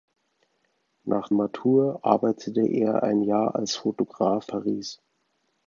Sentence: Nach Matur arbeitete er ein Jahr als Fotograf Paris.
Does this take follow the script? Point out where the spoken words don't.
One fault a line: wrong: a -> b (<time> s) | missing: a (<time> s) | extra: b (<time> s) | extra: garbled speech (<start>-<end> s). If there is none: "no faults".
no faults